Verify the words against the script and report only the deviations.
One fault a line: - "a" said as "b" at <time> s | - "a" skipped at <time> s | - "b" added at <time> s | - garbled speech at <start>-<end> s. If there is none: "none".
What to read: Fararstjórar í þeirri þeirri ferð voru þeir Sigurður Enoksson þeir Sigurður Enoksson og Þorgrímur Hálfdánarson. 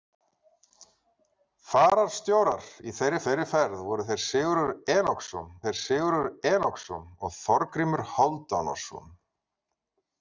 none